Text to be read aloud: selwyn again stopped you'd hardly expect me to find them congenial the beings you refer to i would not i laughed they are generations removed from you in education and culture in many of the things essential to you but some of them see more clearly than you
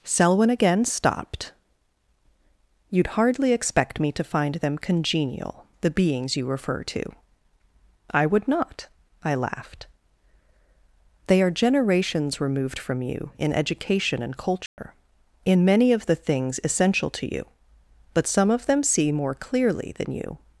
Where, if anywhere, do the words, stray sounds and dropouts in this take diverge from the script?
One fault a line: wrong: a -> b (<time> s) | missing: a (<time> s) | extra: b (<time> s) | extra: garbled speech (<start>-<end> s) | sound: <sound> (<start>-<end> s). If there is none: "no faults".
sound: dropout (14.7-14.8 s)